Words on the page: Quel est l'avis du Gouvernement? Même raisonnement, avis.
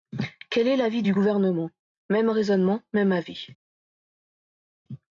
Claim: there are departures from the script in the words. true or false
true